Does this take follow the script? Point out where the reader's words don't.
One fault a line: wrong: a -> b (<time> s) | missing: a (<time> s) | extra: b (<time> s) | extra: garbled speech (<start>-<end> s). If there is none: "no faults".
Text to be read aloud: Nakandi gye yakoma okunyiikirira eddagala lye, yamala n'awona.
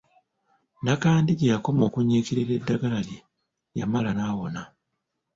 no faults